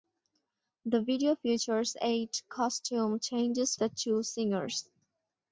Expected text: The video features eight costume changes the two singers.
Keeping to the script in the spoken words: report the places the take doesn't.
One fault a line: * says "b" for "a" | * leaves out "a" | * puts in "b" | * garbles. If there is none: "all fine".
all fine